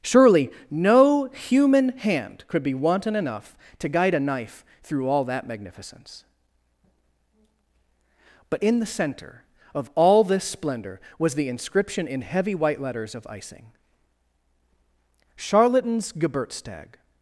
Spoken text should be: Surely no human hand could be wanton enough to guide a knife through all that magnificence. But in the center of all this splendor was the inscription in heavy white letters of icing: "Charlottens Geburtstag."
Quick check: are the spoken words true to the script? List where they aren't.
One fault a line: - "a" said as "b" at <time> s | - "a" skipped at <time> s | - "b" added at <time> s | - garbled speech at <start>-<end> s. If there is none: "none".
none